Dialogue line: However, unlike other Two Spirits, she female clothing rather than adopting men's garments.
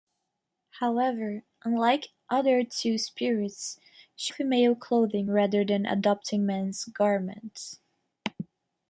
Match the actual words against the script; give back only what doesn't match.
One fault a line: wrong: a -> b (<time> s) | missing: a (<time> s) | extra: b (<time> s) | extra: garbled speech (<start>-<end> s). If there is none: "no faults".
no faults